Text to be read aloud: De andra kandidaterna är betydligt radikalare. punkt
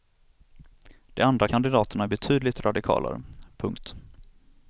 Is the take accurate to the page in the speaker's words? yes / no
yes